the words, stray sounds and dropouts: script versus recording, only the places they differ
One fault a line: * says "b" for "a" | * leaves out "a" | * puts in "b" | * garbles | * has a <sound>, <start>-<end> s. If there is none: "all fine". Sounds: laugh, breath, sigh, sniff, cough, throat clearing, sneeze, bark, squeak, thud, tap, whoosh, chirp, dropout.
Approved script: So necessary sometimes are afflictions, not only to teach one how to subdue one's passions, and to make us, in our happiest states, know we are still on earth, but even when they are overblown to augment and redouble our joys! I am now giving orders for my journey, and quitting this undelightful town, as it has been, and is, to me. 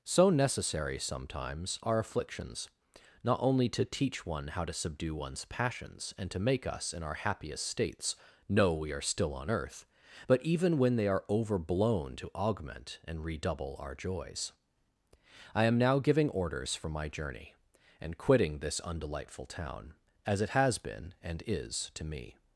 all fine